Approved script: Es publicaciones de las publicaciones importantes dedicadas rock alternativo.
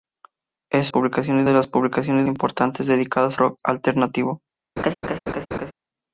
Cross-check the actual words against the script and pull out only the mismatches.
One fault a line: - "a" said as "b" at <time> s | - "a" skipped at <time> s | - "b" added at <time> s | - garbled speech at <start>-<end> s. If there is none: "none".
none